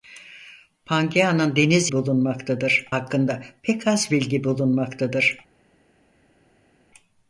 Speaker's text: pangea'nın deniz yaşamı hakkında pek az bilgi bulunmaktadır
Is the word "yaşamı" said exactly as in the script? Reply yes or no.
no